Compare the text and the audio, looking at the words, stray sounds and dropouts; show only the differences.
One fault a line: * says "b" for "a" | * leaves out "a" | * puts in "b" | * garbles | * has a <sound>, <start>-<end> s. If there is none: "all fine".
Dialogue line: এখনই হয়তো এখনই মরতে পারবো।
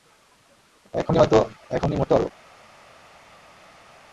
all fine